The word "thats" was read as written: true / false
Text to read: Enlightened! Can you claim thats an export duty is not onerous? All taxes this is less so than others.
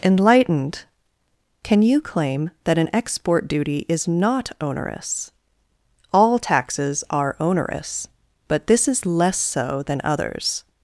false